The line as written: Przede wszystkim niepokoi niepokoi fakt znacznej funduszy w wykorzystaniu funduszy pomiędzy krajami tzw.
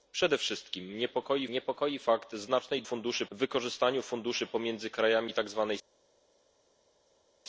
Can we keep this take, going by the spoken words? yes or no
yes